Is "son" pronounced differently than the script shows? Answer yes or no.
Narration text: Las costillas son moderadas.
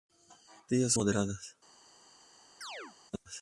yes